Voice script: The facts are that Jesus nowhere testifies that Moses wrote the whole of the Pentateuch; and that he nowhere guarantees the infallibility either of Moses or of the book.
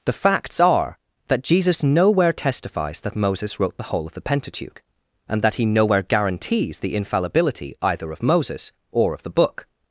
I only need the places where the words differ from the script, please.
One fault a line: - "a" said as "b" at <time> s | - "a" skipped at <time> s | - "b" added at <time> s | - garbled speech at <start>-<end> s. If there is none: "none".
none